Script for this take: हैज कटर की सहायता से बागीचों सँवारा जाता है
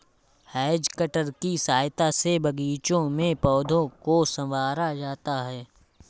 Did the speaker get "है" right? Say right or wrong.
right